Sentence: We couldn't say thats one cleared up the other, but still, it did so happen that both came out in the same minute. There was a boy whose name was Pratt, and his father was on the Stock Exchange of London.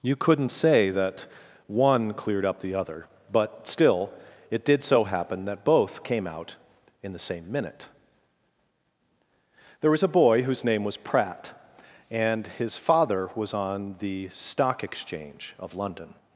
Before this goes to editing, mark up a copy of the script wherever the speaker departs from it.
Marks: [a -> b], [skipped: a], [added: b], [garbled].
[We -> You] couldn't say [thats -> that] one cleared up the other, but still, it did so happen that both came out in the same minute. There was a boy whose name was Pratt, and his father was on the Stock Exchange of London.